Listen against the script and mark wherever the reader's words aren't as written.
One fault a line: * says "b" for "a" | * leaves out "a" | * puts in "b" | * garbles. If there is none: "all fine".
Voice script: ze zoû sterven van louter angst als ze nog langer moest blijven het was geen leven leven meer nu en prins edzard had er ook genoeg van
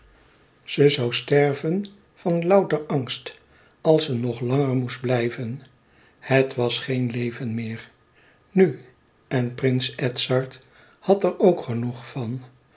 * leaves out "leven"